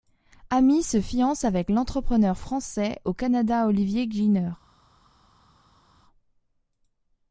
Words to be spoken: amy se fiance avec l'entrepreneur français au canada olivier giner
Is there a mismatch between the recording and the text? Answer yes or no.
no